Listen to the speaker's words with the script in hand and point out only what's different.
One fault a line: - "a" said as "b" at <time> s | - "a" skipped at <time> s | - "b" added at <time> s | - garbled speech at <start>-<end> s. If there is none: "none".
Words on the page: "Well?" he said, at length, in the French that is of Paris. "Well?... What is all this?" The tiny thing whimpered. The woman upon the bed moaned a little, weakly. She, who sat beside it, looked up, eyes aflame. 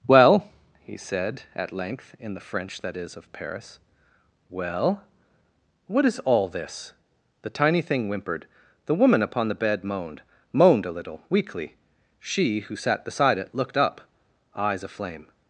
- "moaned" added at 10.5 s